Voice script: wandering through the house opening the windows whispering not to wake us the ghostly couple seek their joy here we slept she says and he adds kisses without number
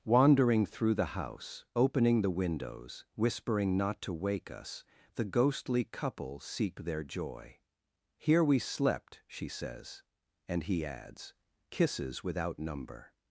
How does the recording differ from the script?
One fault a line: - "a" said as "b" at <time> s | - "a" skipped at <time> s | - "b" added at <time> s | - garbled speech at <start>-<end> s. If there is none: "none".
none